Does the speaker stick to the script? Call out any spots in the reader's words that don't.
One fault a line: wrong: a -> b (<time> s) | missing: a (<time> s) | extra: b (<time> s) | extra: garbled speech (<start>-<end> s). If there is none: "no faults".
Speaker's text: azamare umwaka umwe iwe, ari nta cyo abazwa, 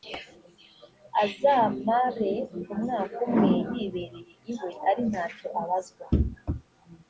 extra: yibereye (3.7 s)